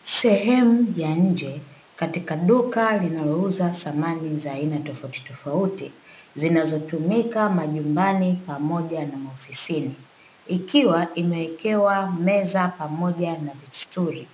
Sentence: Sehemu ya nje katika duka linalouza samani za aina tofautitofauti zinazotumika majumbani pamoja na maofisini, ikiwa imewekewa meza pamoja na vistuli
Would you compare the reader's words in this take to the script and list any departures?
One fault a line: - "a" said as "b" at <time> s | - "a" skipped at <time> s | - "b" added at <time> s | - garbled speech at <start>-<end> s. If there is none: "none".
none